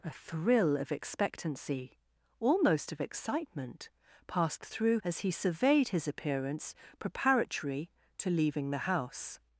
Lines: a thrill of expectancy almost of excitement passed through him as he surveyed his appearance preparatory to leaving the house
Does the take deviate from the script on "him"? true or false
true